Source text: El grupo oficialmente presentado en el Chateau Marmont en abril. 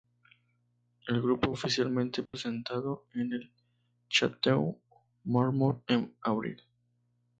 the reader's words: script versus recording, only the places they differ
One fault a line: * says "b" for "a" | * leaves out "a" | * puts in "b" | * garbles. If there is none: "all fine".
all fine